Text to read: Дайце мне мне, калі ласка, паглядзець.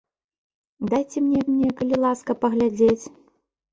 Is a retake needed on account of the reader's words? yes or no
no